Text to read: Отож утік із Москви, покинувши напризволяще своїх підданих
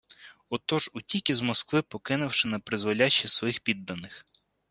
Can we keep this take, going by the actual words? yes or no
yes